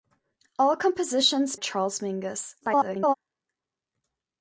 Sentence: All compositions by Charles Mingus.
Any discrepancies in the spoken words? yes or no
yes